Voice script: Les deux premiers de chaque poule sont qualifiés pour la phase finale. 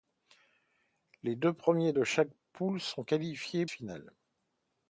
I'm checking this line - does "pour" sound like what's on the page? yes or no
no